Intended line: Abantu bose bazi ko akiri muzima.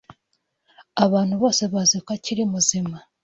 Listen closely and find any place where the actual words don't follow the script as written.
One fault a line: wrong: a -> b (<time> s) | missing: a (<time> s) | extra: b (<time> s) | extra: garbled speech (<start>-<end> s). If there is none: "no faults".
no faults